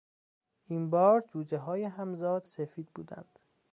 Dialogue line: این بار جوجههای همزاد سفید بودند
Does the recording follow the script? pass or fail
pass